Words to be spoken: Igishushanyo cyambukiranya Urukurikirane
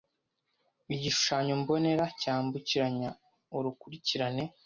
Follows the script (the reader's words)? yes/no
no